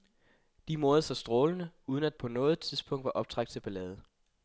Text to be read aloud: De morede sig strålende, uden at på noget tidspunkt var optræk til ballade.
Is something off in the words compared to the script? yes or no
no